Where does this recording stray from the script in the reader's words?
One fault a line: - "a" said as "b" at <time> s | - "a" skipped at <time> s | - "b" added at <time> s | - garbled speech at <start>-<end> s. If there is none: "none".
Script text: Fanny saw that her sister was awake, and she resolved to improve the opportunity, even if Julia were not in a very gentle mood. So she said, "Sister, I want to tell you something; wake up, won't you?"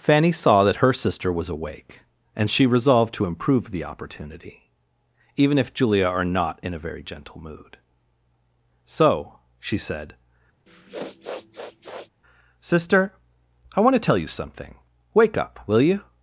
- "were" said as "are" at 6.1 s
- "won't" said as "will" at 15.7 s